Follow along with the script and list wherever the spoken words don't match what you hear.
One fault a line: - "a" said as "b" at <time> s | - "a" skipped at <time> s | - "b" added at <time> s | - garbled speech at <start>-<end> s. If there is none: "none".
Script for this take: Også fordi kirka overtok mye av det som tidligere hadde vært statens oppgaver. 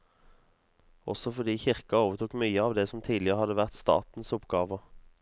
none